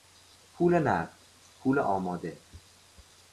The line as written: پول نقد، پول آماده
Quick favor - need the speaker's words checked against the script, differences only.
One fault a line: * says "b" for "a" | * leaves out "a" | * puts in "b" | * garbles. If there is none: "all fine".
all fine